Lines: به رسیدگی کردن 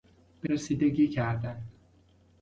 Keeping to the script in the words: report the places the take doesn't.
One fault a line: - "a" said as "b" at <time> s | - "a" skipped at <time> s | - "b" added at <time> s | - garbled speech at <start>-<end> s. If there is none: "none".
none